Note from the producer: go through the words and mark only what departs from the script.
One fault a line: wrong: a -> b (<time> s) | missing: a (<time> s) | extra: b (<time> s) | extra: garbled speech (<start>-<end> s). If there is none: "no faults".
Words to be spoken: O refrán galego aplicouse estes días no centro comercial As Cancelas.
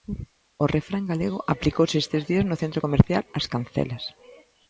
no faults